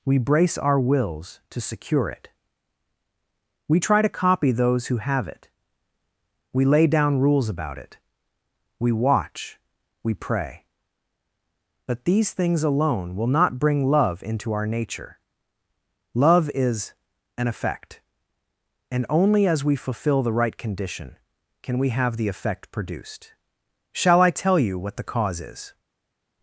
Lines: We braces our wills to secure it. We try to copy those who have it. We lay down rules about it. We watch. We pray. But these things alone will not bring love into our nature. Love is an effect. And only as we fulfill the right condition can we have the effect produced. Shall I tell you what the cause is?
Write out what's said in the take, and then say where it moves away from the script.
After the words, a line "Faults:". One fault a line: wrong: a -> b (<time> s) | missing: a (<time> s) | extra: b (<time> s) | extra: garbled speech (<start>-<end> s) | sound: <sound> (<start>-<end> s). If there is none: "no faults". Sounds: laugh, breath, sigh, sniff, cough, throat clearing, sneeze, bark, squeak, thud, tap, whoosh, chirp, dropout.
We brace our wills to secure it. We try to copy those who have it. We lay down rules about it. We watch. We pray. But these things alone will not bring love into our nature. Love is an effect. And only as we fulfill the right condition can we have the effect produced. Shall I tell you what the cause is?
Faults:
wrong: braces -> brace (0.2 s)